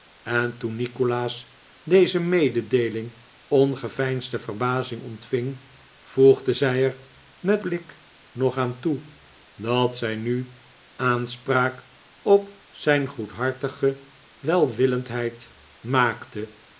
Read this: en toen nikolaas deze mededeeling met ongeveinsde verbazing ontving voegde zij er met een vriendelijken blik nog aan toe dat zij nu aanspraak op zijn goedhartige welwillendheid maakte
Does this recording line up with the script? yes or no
no